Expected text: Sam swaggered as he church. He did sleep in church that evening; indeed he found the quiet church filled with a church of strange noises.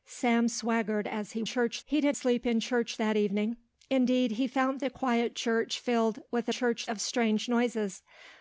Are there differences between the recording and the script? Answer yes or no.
no